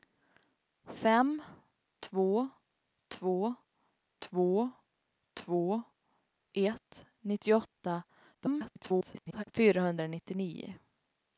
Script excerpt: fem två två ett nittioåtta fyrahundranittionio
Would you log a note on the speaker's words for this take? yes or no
yes